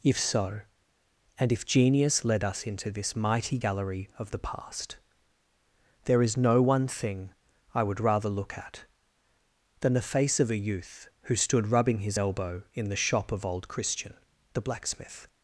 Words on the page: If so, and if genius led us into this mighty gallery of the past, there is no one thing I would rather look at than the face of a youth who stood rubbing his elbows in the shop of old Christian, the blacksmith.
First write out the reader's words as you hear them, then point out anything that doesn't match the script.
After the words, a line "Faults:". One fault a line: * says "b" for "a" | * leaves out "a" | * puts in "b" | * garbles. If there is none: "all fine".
If so, and if genius led us into this mighty gallery of the past, there is no one thing I would rather look at than the face of a youth who stood rubbing his elbow in the shop of old Christian, the blacksmith.
Faults:
* says "elbow" for "elbows"